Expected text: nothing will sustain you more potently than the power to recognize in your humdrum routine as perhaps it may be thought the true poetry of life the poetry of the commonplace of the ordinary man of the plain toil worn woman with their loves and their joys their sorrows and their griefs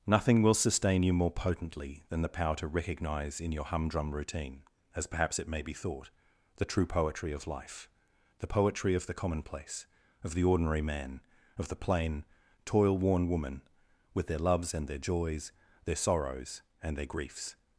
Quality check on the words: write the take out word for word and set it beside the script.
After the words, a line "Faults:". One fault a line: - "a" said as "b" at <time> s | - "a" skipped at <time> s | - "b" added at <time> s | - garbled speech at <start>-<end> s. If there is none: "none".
nothing will sustain you more potently than the power to recognize in your humdrum routine as perhaps it may be thought the true poetry of life the poetry of the commonplace of the ordinary man of the plain toil worn woman with their loves and their joys their sorrows and their griefs
Faults:
none